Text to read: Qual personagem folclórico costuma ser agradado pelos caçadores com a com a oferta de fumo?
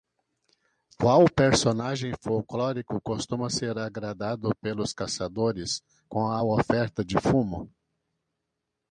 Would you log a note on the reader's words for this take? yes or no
yes